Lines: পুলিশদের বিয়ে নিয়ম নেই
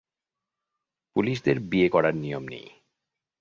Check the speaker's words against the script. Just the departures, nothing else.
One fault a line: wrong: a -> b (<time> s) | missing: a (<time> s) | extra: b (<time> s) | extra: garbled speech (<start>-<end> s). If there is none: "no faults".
extra: করার (1.9 s)